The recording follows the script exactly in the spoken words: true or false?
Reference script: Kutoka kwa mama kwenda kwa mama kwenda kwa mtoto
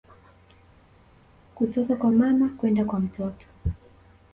false